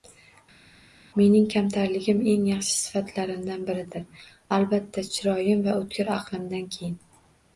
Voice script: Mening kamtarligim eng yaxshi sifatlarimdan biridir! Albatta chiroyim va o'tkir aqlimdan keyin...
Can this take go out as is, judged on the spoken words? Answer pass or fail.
pass